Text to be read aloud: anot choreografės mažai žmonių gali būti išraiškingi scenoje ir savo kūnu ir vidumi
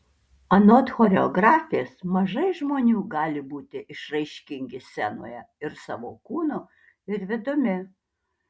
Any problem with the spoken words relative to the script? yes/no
no